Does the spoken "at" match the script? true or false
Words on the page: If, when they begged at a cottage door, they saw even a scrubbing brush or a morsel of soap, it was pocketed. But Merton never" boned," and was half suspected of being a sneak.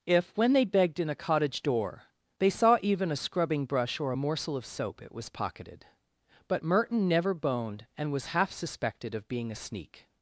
false